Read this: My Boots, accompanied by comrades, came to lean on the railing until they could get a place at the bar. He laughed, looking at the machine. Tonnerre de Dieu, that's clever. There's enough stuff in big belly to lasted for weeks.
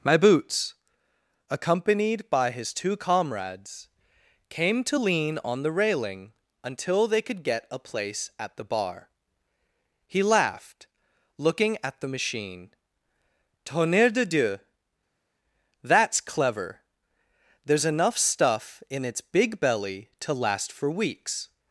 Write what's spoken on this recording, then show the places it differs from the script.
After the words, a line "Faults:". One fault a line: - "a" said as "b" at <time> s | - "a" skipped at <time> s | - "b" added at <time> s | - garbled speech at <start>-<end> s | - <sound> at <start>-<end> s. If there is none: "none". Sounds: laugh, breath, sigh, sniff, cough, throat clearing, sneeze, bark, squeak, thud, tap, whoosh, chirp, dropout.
My Boots, accompanied by his two comrades, came to lean on the railing until they could get a place at the bar. He laughed, looking at the machine. Tonnerre de Dieu, that's clever. There's enough stuff in its big belly to last for weeks.
Faults:
- "his two" added at 2.5 s
- "its" added at 19.1 s
- "lasted" said as "last" at 20.3 s